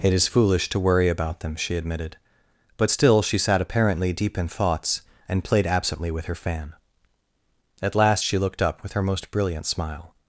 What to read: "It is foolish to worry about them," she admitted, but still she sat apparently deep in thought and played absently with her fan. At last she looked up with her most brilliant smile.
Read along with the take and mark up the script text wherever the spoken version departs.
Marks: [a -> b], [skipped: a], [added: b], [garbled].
"It is foolish to worry about them," she admitted, but still she sat apparently deep in [thought -> thoughts] and played absently with her fan. At last she looked up with her most brilliant smile.